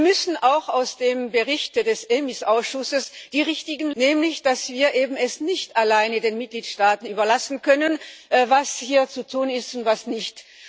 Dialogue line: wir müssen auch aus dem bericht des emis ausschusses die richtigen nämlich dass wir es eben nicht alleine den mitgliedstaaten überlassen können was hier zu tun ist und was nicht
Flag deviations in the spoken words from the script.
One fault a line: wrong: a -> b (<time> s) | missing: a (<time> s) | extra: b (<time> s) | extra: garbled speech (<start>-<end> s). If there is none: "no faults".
no faults